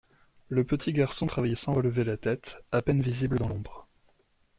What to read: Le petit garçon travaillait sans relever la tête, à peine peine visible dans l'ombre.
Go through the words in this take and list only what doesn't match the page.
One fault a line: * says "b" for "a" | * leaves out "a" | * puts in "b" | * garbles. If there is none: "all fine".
* leaves out "peine"